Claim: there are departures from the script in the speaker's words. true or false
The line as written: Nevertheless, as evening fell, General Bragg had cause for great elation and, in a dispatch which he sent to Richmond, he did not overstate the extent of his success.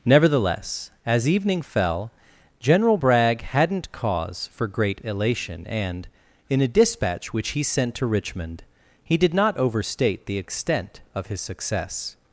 true